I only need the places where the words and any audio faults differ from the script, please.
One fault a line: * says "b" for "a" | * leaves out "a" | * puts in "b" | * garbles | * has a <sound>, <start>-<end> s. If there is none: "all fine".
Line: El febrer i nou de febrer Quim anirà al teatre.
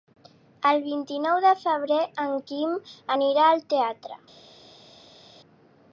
* says "vint" for "febrer"
* puts in "en"